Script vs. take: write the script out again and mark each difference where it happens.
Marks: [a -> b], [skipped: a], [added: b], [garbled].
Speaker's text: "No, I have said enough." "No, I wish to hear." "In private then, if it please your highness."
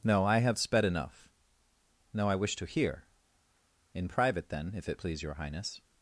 "No, I have [said -> sped] enough." "No, I wish to hear." "In private then, if it please your highness."